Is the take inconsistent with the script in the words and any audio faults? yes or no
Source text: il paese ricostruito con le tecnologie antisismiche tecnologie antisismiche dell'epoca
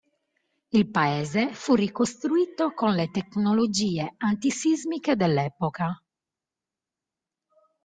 yes